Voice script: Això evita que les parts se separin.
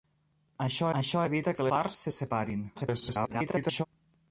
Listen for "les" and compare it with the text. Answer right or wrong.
wrong